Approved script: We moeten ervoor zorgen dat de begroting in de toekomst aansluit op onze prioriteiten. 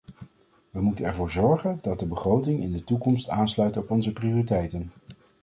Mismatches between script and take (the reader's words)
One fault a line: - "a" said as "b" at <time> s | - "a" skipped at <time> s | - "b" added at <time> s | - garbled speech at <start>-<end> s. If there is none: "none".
none